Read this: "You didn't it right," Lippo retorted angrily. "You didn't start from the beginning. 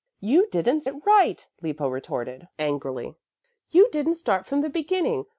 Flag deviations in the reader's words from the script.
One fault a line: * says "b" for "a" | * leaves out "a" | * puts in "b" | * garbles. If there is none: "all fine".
all fine